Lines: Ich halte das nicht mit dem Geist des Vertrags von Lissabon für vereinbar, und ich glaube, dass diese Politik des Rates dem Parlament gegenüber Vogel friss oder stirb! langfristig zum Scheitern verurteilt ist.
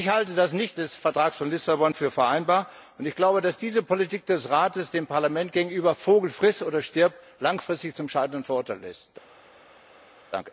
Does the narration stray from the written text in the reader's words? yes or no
yes